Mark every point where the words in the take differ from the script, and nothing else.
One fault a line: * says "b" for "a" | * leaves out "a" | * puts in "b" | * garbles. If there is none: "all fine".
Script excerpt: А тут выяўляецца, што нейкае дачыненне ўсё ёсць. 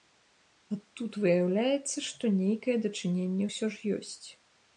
* puts in "ж"